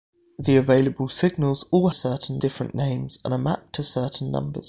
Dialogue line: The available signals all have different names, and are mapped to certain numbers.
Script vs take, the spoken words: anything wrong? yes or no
yes